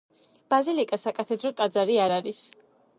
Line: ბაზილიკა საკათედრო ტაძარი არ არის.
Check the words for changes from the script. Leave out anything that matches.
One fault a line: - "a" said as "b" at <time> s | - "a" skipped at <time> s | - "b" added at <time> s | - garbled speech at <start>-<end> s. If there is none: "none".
none